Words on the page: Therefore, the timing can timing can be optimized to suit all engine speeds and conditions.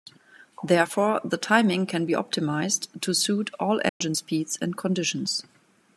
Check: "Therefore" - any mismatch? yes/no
no